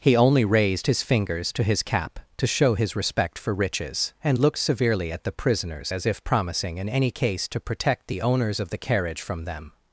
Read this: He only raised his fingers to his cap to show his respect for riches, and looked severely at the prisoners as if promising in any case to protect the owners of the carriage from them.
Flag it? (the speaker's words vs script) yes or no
no